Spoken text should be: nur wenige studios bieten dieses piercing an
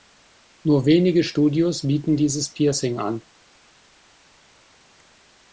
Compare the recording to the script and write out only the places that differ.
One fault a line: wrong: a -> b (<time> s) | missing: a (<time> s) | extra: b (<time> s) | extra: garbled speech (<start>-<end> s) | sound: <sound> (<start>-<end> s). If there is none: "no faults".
no faults